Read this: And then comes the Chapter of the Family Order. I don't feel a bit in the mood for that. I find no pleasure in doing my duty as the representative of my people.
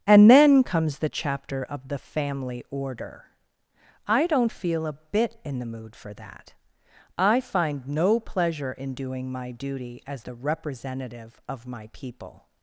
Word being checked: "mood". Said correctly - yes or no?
yes